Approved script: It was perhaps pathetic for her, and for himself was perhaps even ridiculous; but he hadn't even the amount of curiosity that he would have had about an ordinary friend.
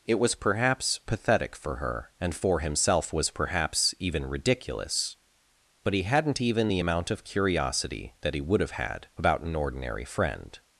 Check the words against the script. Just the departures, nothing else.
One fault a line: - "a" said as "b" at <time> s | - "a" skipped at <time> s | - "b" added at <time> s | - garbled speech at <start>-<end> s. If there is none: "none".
none